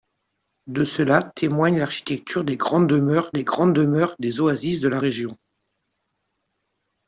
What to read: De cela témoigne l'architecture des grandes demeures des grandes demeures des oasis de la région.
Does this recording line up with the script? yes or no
yes